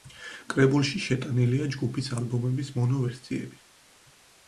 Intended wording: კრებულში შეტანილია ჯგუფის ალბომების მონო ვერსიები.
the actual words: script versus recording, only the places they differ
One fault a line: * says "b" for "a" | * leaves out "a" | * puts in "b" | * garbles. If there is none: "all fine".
all fine